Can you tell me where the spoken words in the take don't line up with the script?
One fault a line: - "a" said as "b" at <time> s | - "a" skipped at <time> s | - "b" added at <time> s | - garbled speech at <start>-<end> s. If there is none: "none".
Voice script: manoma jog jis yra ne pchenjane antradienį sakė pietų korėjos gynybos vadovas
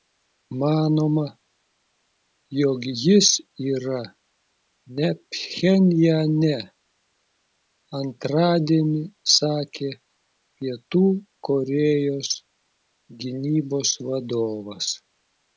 none